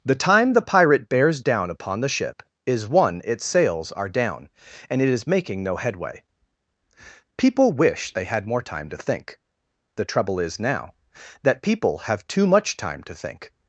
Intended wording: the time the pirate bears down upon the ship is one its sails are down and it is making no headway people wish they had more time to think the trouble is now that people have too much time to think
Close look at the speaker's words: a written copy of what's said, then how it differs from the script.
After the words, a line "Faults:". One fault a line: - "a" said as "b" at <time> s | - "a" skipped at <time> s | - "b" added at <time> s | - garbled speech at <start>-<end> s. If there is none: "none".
the time the pirate bears down upon the ship is one its sails are down and it is making no headway people wish they had more time to think the trouble is now that people have too much time to think
Faults:
none